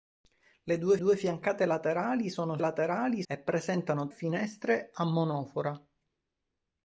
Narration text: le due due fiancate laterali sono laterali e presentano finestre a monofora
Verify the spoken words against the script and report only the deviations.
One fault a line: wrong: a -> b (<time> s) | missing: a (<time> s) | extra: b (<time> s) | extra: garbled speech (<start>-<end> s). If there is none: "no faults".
no faults